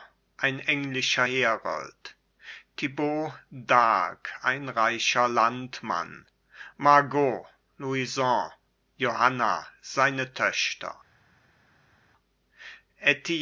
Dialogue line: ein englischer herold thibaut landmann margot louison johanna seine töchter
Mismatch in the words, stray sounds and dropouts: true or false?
true